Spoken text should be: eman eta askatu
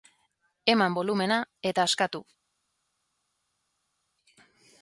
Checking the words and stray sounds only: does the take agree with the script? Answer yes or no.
no